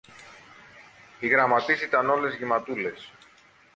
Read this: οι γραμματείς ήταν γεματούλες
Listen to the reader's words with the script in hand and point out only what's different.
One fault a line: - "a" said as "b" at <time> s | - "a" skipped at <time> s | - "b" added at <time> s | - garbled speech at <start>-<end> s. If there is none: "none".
- "όλες" added at 2.1 s